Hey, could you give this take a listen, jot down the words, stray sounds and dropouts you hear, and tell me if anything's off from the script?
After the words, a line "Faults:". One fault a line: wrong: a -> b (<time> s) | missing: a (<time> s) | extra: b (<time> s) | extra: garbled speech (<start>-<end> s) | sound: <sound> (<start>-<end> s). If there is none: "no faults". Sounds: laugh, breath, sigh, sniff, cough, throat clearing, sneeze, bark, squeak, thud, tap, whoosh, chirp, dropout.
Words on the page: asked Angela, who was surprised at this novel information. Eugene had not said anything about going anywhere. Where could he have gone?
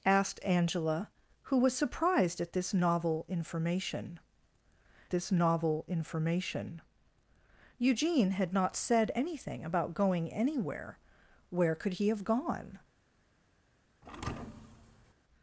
asked Angela, who was surprised at this novel information this novel information. Eugene had not said anything about going anywhere. Where could he have gone?
Faults:
extra: this novel information (5.1 s)
sound: thud (14.0-15.1 s)